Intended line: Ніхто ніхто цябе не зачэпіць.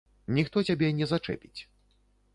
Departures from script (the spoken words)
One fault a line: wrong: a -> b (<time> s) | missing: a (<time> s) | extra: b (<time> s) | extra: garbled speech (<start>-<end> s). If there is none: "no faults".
missing: ніхто (0.6 s)